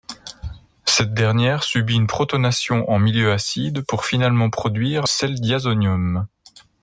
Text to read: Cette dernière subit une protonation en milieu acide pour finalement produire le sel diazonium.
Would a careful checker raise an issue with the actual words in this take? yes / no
yes